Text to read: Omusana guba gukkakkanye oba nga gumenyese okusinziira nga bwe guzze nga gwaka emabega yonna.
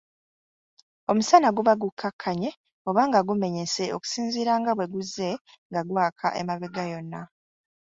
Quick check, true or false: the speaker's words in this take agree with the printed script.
true